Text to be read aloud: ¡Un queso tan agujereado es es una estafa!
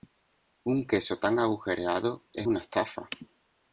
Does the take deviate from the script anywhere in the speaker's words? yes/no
yes